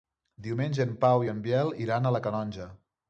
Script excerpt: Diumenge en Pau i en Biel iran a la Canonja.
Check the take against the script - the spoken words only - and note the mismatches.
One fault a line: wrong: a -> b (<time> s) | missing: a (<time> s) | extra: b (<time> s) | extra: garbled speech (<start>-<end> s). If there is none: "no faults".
no faults